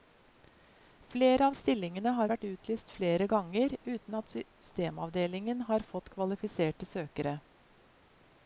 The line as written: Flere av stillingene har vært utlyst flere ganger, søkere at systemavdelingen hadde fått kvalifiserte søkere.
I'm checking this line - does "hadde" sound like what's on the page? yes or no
no